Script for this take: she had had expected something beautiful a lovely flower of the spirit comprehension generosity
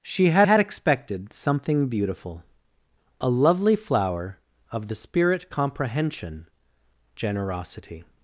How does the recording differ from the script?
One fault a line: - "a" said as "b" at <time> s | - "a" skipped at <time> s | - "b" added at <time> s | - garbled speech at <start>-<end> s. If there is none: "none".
none